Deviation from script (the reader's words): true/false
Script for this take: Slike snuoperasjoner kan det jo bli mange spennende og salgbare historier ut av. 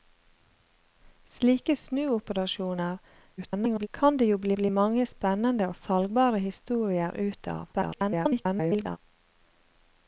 true